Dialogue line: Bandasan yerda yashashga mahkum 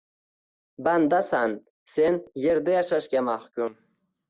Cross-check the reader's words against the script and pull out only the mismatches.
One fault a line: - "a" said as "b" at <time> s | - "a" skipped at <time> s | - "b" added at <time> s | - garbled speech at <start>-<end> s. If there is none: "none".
- "sen" added at 1.9 s